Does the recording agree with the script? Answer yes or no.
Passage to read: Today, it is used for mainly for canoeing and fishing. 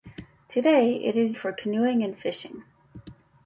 no